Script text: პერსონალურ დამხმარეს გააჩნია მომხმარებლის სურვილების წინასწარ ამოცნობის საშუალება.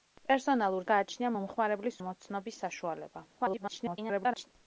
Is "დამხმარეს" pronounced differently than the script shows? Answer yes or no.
yes